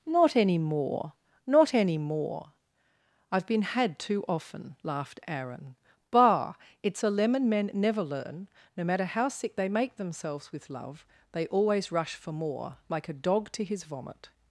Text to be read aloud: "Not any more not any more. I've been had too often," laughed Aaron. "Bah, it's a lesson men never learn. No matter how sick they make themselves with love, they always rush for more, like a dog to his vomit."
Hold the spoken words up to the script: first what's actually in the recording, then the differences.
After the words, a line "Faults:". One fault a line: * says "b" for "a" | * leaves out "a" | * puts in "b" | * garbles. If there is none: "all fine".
"Not any more not any more. I've been had too often," laughed Aaron. "Bah, it's a lemon men never learn. No matter how sick they make themselves with love, they always rush for more, like a dog to his vomit."
Faults:
* says "lemon" for "lesson"